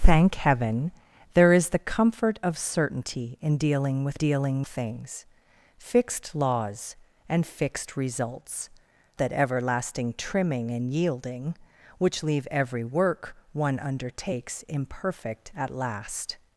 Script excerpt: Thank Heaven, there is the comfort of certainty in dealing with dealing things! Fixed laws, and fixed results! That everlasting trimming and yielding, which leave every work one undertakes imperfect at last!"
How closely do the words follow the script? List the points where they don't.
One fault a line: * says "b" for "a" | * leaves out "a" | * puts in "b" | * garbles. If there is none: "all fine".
all fine